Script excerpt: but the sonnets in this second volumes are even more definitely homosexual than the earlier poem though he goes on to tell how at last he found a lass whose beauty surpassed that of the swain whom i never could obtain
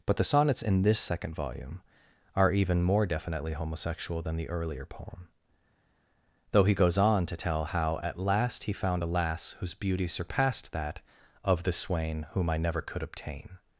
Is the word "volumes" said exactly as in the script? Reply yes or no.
no